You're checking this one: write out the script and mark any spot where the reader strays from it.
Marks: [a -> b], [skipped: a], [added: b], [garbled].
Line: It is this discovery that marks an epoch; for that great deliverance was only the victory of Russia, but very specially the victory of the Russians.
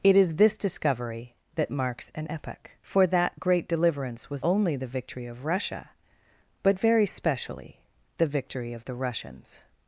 It is this discovery that marks an epoch; for that great deliverance was only the victory of Russia, but very specially the victory of the Russians.